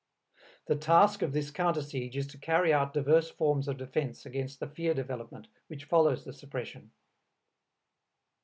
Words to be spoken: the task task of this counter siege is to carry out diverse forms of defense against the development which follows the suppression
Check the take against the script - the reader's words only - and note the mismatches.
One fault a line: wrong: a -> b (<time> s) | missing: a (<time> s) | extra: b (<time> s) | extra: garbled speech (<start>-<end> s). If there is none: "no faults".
missing: task (1.2 s)
extra: fear (4.7 s)